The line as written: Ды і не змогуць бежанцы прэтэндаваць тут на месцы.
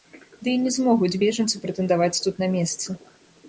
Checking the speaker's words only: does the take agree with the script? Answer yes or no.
yes